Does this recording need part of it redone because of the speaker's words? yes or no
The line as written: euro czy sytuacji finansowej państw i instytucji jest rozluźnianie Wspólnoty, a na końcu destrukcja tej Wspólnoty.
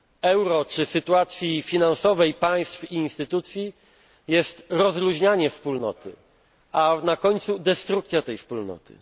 no